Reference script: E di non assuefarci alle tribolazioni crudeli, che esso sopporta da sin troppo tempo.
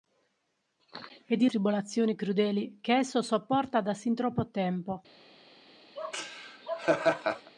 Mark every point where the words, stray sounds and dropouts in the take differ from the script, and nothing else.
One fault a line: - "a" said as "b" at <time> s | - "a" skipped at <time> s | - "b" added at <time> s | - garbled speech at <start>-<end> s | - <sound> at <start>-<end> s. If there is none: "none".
- "non assuefarci alle" skipped at 1.5 s
- laugh at 6.0-7.5 s